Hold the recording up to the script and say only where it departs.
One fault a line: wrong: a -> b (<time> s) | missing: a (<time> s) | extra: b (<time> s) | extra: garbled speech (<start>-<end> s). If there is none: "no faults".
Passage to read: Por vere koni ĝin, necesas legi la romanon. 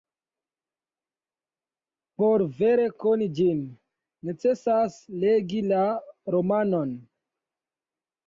no faults